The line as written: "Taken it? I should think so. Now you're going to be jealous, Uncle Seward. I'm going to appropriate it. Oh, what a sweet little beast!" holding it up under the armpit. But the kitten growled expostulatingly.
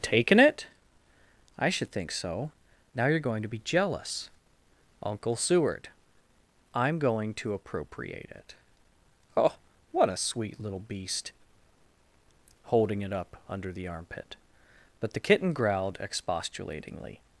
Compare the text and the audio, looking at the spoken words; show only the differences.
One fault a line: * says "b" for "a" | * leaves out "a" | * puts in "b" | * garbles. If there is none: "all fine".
all fine